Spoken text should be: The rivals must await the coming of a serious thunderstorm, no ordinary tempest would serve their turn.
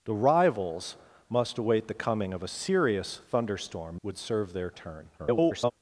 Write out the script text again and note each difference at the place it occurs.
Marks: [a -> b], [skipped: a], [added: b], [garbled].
The rivals must await the coming of a serious thunderstorm, [skipped: no ordinary tempest] would serve their turn. [garbled]